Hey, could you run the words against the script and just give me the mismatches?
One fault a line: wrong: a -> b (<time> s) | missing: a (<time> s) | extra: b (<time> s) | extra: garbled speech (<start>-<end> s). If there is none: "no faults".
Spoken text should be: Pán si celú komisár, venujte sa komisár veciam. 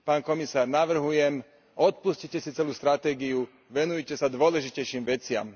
extra: komisár navrhujem odpustite (0.2 s)
wrong: komisár -> stratégiu (2.7 s)
wrong: komisár -> dôležitejším (4.3 s)